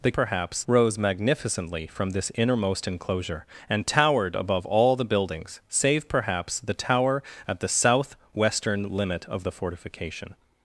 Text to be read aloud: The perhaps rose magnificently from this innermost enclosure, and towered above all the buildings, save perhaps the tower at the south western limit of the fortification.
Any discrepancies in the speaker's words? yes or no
no